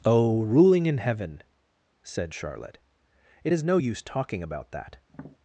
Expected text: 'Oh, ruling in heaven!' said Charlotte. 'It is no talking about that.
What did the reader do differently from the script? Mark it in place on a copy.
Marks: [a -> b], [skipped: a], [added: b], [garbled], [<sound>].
'Oh, ruling in heaven!' said Charlotte. 'It is no [added: use] talking about that. [tap]